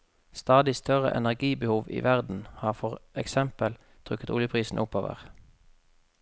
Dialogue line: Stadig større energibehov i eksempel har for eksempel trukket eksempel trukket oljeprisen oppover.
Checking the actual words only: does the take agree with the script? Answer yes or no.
no